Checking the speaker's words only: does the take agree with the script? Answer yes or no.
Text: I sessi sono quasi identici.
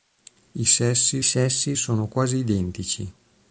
no